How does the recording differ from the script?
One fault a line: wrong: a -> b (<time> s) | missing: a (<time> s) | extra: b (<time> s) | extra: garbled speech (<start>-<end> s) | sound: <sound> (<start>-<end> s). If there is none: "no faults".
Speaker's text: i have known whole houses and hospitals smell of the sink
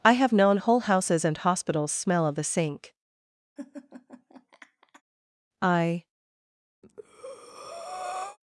sound: laugh (3.6-5.0 s)
extra: i (5.6 s)
sound: breath (6.8-8.4 s)